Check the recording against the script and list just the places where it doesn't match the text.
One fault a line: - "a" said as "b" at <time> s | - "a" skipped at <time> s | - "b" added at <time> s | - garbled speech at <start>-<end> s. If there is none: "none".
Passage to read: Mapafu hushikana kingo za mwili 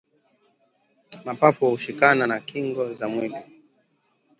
- "na" added at 2.3 s